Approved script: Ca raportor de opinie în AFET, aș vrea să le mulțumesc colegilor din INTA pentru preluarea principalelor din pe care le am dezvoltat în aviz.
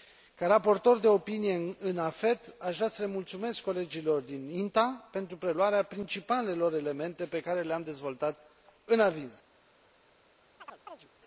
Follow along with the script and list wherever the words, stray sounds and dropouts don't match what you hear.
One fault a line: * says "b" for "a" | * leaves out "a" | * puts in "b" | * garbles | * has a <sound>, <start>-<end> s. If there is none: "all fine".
* says "elemente" for "din"
* has a chirp, 10.6-11.1 s